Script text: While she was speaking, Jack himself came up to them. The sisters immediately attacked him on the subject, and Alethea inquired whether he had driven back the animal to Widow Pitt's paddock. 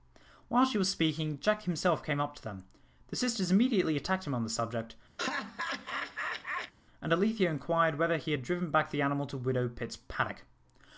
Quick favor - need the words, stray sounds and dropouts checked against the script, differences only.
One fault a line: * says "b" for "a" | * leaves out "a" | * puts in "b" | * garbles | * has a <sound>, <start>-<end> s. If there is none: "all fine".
* has a laugh, 5.2-6.7 s